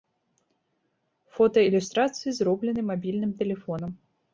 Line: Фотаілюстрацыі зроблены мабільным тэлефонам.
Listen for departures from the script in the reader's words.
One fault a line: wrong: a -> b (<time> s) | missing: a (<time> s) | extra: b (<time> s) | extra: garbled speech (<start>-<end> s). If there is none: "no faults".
no faults